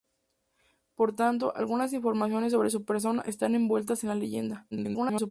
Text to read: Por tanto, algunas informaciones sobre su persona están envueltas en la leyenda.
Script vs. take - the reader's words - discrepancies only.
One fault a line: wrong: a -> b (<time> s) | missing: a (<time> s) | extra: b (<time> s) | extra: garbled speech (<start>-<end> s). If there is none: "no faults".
extra: garbled speech (4.7-5.3 s)